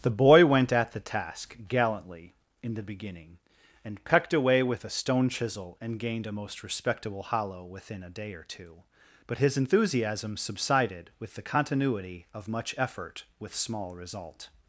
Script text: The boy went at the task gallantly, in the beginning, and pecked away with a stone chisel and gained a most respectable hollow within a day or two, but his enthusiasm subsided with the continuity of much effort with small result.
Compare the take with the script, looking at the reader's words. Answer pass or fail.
pass